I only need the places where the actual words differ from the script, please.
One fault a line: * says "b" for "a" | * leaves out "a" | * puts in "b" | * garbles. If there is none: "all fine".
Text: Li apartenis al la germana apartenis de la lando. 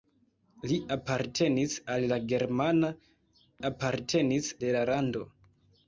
all fine